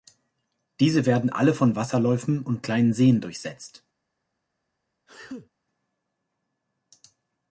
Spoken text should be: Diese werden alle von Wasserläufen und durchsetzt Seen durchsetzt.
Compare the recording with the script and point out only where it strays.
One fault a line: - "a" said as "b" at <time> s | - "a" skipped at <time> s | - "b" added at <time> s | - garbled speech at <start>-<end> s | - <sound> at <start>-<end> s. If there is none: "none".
- "durchsetzt" said as "kleinen" at 2.6 s
- sneeze at 5.1-5.5 s